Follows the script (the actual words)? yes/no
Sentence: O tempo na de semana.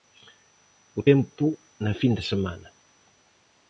no